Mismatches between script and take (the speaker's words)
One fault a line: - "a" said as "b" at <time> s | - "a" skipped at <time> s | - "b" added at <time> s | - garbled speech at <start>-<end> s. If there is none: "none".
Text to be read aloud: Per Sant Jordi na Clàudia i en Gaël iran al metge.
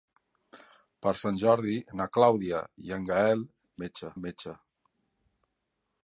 - "iran" said as "metge" at 3.8 s